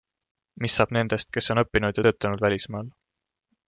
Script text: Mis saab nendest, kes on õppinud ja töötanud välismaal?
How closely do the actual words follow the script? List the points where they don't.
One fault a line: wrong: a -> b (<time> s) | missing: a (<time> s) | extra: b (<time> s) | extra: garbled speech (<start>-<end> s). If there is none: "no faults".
no faults